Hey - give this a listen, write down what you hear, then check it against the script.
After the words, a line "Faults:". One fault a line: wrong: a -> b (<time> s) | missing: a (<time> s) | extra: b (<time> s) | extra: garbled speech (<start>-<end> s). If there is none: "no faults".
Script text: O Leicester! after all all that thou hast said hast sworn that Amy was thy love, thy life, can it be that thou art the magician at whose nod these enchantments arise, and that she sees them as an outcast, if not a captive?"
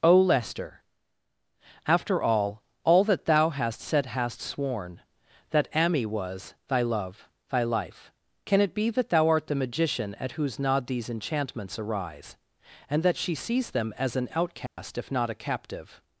O Leicester! after all all that thou hast said hast sworn that Amy was thy love, thy life, can it be that thou art the magician at whose nod these enchantments arise, and that she sees them as an outcast, if not a captive?"
Faults:
no faults